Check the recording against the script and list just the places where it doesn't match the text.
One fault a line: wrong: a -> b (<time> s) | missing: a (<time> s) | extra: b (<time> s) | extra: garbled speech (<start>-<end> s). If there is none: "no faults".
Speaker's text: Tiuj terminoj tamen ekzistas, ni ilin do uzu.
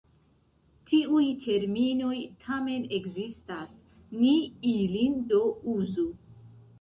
no faults